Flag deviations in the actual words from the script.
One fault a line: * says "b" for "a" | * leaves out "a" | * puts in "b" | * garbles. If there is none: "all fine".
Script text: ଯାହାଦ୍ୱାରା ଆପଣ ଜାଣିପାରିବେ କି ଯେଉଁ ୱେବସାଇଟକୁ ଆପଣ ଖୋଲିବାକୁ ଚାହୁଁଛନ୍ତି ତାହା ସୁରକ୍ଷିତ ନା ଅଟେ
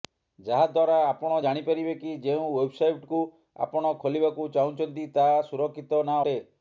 all fine